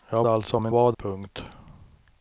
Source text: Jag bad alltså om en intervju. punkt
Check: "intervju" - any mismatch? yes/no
yes